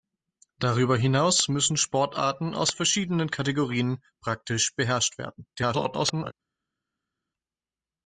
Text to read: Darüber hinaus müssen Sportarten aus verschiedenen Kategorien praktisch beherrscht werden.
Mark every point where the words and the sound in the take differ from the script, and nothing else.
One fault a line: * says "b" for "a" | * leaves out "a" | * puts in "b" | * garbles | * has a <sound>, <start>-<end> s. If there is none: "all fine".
* garbles